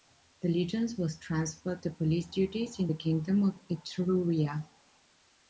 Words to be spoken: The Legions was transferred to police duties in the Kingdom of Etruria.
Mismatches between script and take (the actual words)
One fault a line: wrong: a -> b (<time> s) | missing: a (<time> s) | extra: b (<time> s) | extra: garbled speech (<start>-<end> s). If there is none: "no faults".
no faults